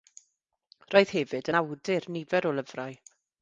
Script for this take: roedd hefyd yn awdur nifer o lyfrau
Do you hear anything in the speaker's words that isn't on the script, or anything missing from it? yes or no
no